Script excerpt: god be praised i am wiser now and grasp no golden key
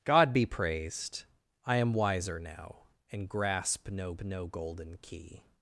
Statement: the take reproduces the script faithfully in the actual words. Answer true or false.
false